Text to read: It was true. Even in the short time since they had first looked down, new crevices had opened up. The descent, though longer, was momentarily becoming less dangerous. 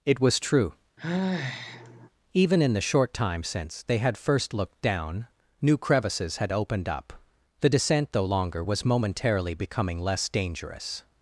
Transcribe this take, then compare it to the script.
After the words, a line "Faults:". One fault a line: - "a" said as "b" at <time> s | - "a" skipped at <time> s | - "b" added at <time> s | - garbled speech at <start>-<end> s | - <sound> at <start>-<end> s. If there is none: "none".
It was true. Even in the short time since they had first looked down, new crevices had opened up. The descent, though longer, was momentarily becoming less dangerous.
Faults:
- sigh at 1.0-2.1 s